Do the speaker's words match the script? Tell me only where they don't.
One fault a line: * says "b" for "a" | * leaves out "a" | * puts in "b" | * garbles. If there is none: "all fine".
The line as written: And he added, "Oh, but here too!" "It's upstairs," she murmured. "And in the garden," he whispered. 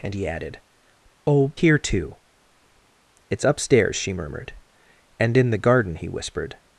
* leaves out "but"